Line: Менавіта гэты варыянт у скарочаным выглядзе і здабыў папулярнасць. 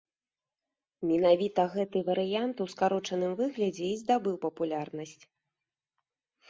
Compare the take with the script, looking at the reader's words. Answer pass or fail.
pass